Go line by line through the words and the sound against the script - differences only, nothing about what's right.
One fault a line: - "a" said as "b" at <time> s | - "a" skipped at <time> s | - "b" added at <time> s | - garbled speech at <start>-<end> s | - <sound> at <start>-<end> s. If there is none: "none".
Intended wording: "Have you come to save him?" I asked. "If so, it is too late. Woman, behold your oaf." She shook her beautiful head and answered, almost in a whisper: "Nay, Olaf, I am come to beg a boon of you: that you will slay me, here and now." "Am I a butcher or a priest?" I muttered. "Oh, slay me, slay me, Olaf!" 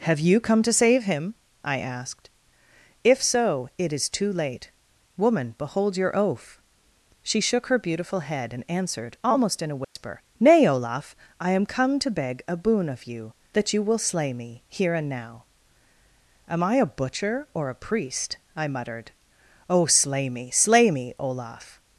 - dropout at 9.8-10.0 s